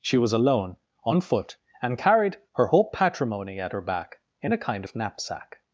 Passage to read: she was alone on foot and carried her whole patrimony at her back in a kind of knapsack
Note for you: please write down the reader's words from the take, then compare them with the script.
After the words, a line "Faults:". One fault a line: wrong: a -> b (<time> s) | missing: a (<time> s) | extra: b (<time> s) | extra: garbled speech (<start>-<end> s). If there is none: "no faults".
she was alone on foot and carried her whole patrimony at her back in a kind of knapsack
Faults:
no faults